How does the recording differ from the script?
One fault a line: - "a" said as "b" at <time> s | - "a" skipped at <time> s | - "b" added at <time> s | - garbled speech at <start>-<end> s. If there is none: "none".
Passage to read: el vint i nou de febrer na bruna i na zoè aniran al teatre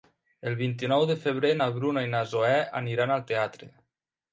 none